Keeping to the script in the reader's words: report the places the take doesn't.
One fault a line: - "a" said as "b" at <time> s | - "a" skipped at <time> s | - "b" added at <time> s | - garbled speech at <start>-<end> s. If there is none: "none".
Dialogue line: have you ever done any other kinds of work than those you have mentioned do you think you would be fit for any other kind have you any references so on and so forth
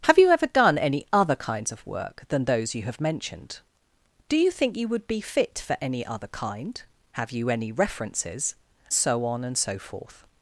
none